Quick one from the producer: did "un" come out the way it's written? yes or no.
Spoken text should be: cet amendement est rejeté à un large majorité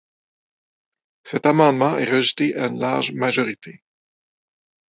no